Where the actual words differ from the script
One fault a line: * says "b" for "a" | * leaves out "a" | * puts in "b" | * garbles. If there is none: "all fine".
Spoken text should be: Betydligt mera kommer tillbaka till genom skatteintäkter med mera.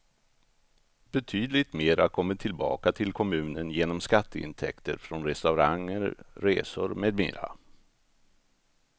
* puts in "kommunen"
* puts in "från restauranger resor"